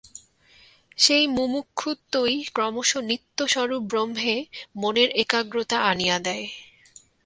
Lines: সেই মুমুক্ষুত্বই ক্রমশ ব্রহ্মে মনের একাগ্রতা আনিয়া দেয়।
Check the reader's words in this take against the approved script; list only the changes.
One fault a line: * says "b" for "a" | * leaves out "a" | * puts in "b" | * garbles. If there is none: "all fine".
* puts in "নিত্যস্বরূপ"